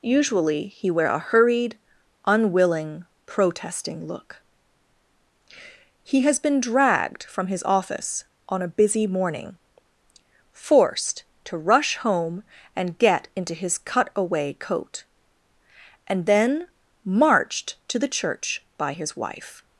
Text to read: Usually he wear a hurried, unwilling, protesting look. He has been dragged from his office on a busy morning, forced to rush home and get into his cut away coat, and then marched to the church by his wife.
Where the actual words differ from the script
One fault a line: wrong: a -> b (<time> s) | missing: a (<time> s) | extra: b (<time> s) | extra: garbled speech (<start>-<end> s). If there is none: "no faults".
no faults